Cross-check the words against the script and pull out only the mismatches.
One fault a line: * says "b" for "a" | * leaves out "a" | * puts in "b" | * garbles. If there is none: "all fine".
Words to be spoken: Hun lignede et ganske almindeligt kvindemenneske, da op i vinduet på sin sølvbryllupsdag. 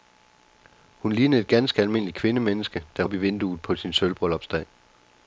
all fine